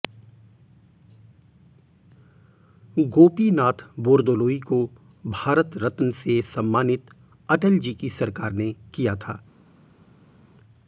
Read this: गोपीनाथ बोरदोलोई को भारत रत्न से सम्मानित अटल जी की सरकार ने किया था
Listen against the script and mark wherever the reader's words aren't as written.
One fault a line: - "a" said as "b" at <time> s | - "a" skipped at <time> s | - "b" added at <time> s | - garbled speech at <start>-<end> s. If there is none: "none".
none